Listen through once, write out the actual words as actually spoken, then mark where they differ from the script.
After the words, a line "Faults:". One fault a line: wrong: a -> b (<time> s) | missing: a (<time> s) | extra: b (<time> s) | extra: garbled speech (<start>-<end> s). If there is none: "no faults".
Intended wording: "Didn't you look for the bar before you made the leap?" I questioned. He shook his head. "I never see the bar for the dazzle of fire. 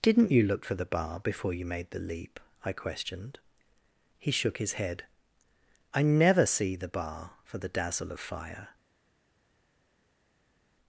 "Didn't you look for the bar before you made the leap?" I questioned. He shook his head. "I never see the bar for the dazzle of fire.
Faults:
no faults